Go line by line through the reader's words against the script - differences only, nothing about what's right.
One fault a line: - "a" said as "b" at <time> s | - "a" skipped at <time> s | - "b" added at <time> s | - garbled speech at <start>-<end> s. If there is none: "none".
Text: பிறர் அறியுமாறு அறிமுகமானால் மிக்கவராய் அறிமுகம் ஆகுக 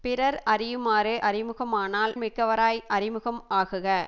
none